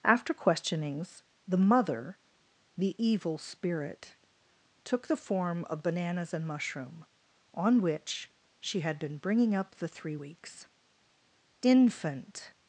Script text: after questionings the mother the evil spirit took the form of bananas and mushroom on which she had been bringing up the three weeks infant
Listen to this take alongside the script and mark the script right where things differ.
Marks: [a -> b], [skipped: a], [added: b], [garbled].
after questionings the mother the evil spirit took the form of bananas and mushroom on which she had been bringing up the three weeks infant